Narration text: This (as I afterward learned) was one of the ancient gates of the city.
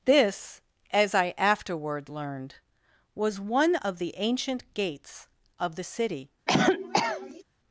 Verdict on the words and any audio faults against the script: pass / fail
fail